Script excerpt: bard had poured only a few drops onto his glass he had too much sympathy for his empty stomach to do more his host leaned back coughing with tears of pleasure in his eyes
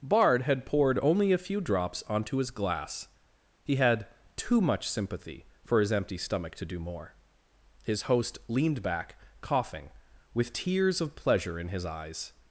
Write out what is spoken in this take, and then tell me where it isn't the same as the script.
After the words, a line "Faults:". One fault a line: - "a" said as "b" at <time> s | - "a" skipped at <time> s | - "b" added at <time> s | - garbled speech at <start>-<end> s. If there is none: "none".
bard had poured only a few drops onto his glass he had too much sympathy for his empty stomach to do more his host leaned back coughing with tears of pleasure in his eyes
Faults:
none